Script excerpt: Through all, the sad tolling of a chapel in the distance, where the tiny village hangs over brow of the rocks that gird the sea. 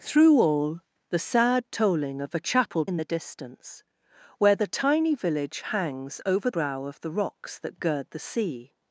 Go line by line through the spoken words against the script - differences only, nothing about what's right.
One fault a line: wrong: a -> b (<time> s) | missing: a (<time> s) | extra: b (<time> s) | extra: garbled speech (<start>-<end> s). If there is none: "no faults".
no faults